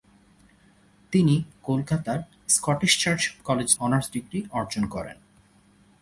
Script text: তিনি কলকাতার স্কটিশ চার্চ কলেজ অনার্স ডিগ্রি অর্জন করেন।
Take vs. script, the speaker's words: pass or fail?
pass